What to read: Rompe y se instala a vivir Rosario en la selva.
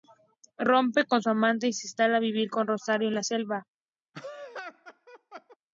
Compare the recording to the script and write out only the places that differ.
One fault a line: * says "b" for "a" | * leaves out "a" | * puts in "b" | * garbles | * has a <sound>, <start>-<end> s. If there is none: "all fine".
* puts in "con su amante"
* puts in "con"
* has a laugh, 4.1-5.6 s